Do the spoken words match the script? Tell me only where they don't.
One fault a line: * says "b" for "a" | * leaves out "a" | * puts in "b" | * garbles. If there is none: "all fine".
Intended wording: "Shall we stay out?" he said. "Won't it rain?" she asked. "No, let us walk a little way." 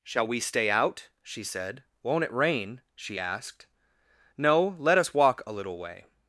* says "she" for "he"